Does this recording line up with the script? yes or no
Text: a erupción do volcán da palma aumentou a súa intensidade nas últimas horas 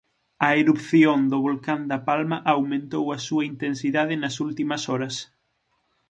yes